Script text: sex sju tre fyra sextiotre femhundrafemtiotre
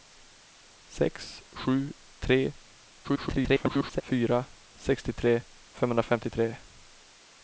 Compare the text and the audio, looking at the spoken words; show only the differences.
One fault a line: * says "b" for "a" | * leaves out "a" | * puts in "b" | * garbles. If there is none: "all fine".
* garbles